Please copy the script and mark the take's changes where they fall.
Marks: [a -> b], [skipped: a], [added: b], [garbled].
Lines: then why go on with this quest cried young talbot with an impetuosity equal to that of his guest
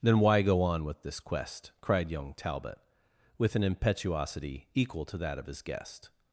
then why go on with this quest cried young talbot with an impetuosity equal to that of his guest